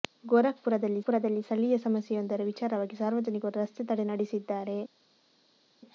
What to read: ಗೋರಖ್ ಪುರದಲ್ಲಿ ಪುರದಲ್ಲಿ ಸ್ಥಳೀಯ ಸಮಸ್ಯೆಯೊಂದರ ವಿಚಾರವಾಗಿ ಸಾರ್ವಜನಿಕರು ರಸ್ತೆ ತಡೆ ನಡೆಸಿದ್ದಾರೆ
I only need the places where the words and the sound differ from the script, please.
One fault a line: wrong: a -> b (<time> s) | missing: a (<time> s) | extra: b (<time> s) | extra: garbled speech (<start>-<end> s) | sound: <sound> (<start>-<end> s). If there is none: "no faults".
no faults